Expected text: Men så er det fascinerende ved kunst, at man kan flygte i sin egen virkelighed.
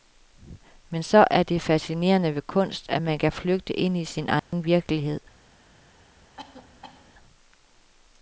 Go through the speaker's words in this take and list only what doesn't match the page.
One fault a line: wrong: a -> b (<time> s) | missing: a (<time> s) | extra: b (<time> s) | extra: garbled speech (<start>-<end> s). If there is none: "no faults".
extra: ind (3.7 s)